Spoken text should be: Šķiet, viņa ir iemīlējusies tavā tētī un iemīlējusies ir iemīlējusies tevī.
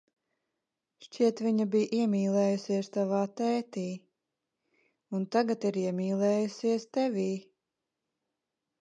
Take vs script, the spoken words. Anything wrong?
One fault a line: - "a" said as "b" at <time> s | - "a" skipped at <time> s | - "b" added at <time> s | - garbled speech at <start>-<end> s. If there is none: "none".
- "ir" said as "bija" at 1.8 s
- "iemīlējusies" said as "tagad" at 5.4 s